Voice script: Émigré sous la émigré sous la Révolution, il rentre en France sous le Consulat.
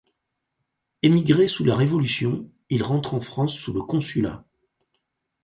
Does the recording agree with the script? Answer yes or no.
no